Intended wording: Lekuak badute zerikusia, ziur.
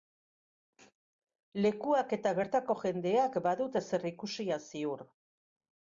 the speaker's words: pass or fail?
fail